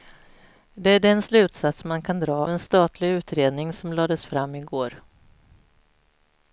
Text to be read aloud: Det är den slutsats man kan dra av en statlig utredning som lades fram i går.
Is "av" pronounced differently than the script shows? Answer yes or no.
yes